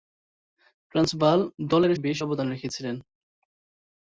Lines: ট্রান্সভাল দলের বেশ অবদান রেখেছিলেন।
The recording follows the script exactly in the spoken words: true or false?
true